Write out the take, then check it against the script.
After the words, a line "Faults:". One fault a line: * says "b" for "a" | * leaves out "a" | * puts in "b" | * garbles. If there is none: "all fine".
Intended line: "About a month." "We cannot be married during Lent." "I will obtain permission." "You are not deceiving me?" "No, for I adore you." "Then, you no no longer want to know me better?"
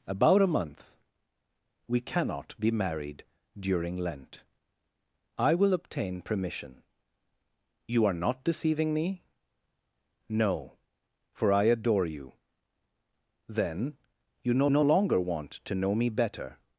"About a month." "We cannot be married during Lent." "I will obtain permission." "You are not deceiving me?" "No, for I adore you." "Then, you no no longer want to know me better?"
Faults:
all fine